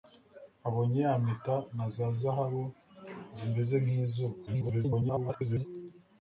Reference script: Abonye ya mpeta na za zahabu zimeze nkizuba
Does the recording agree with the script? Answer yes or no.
no